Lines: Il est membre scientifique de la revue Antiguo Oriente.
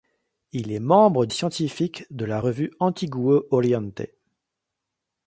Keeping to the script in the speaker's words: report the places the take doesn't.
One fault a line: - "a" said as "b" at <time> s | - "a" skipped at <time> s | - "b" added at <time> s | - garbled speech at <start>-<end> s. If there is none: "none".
none